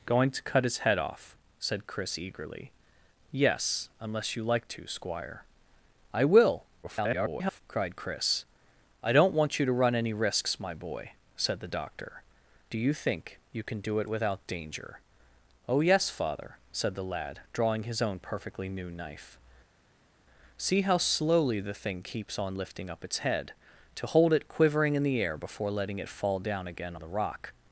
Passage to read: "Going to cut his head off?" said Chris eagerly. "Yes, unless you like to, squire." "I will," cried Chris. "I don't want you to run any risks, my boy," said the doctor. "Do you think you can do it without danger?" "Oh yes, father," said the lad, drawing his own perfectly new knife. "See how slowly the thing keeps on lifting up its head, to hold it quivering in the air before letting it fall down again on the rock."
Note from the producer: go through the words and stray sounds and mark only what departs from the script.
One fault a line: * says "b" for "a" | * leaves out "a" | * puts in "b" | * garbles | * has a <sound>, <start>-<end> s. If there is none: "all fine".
* garbles
* leaves out "on"